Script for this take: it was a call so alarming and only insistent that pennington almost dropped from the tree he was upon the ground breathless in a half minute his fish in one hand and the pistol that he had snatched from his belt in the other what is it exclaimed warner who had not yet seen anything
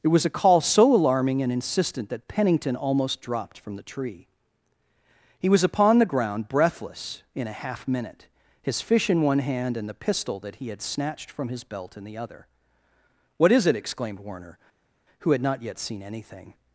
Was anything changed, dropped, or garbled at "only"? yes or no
yes